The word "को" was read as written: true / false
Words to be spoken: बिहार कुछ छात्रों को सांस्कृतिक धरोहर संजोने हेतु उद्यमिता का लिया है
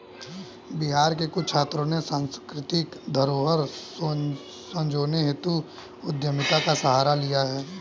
false